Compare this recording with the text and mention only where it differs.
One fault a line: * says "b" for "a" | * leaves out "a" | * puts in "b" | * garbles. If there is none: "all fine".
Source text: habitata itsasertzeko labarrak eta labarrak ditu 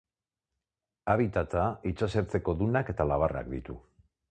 * says "dunak" for "labarrak"